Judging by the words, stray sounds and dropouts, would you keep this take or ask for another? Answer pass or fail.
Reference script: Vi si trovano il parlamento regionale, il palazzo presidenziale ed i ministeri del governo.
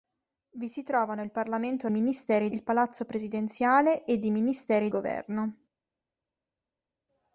fail